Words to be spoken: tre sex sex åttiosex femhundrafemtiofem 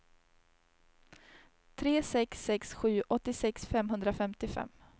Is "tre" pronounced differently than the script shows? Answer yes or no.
no